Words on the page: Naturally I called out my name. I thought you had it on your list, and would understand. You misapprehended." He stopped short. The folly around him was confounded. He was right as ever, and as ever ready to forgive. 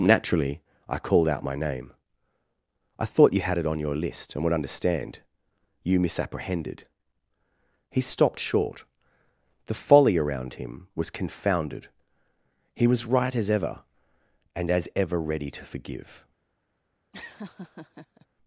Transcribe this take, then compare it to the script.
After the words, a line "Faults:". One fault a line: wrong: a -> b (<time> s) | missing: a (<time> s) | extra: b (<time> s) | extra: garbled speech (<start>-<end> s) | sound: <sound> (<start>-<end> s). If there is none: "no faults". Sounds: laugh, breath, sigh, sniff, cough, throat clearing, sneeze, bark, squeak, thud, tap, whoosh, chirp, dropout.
Naturally I called out my name. I thought you had it on your list, and would understand. You misapprehended." He stopped short. The folly around him was confounded. He was right as ever, and as ever ready to forgive.
Faults:
sound: laugh (17.1-18.3 s)